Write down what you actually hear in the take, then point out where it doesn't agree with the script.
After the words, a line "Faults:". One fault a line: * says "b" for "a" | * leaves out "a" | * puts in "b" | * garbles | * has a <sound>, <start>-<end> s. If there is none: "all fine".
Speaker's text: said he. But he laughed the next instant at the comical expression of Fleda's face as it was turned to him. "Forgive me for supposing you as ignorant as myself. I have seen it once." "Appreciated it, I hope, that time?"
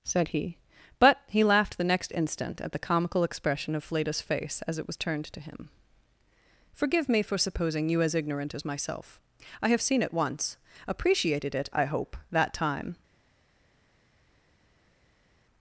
said he. But he laughed the next instant at the comical expression of Fleda's face as it was turned to him. "Forgive me for supposing you as ignorant as myself. I have seen it once." "Appreciated it, I hope, that time?"
Faults:
all fine